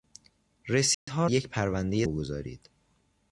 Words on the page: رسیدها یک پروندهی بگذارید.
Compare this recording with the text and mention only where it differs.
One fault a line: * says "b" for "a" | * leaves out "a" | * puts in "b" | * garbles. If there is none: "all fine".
all fine